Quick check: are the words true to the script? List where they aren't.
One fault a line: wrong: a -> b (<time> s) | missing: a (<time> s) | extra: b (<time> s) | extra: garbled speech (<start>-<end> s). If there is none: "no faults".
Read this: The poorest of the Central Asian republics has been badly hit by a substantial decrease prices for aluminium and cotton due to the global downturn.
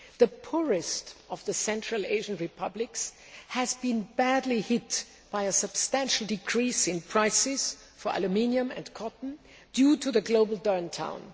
extra: in (6.9 s)